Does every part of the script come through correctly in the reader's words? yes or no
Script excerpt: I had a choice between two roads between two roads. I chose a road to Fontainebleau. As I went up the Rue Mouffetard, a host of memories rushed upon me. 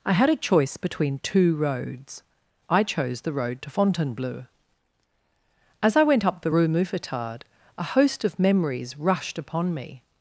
no